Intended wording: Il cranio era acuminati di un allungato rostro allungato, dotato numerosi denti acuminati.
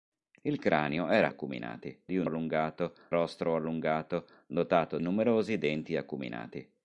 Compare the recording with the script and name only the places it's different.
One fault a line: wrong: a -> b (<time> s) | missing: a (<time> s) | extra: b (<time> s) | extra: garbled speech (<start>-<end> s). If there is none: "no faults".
no faults